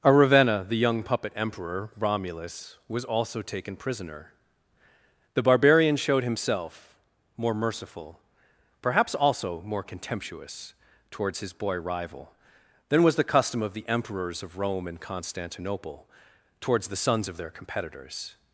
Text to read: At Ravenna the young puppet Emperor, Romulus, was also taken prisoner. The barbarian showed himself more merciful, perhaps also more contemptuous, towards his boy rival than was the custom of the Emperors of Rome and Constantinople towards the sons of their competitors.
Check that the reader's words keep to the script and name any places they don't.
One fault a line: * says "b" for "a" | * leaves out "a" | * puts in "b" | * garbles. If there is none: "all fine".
* says "A" for "At"